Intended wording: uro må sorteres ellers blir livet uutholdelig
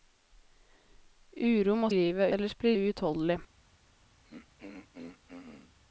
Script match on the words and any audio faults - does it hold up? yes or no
no